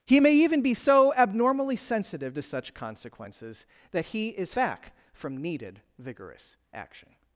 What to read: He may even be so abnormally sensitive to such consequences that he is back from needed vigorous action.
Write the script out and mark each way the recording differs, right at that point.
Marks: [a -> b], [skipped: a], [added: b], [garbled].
He may even be so abnormally sensitive to such consequences that he is back from needed vigorous action.